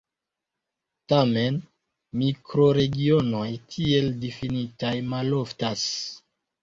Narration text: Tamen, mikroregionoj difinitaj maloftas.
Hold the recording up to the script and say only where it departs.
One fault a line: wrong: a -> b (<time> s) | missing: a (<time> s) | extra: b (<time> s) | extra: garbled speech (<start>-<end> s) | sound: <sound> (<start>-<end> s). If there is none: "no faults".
extra: tiel (3.7 s)